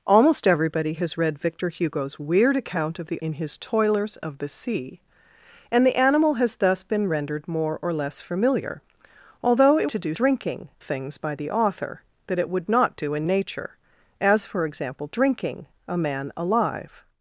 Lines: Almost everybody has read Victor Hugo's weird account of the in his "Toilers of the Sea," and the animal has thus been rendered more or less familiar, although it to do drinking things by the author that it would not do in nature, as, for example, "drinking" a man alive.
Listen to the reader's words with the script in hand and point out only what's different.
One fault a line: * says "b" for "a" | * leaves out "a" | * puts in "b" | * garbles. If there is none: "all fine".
all fine